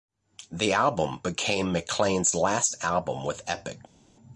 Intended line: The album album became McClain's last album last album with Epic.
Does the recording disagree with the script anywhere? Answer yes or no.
yes